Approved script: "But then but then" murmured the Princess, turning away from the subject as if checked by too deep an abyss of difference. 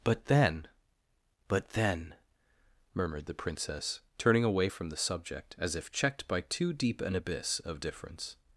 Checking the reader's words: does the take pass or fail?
pass